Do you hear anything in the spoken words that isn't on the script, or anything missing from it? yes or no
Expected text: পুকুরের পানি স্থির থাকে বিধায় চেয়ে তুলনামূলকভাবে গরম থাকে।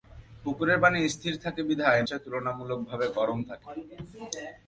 no